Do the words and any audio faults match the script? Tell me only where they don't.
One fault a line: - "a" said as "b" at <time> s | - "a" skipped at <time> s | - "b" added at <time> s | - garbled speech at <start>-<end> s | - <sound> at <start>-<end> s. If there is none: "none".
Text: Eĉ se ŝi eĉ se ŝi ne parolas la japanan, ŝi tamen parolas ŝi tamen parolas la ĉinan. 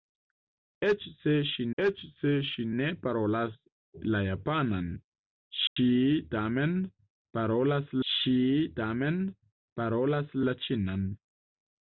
- dropout at 5.7-5.8 s